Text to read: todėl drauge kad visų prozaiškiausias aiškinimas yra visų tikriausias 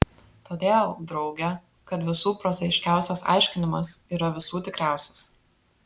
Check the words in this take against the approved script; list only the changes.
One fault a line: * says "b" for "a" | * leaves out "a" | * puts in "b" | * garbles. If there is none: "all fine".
all fine